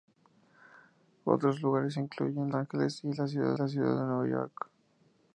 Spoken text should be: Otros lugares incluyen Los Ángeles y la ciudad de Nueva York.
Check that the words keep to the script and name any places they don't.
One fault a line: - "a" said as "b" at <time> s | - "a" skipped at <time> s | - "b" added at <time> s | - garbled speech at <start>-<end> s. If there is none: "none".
- "Los" skipped at 2.5 s
- "la ciudad" added at 3.6 s